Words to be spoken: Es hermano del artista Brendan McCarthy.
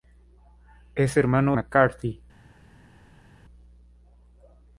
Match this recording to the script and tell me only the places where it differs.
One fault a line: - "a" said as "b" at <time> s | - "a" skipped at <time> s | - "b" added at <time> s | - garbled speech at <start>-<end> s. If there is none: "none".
- "del artista Brendan" skipped at 1.6 s